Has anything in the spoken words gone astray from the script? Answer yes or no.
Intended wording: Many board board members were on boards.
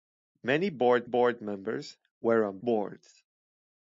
no